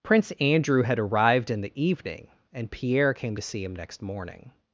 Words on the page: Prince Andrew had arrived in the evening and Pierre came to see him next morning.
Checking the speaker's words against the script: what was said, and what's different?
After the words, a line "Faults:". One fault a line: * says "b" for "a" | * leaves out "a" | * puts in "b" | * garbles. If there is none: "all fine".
Prince Andrew had arrived in the evening and Pierre came to see him next morning.
Faults:
all fine